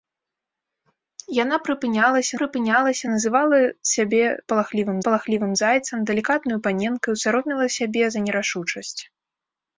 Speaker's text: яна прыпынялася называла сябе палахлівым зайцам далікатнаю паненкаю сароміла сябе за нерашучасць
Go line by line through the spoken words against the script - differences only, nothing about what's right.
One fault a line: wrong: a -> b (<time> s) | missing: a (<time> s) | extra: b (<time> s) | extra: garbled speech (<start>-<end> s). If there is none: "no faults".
extra: прыпынялася (2.4 s)
extra: палахлівым (5.1 s)